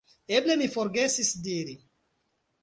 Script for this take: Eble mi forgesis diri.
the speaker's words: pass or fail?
pass